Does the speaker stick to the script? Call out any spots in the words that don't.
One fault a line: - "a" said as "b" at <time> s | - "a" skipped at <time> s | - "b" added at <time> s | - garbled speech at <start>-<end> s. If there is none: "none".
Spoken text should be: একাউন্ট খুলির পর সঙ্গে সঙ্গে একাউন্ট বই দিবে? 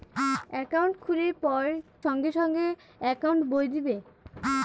none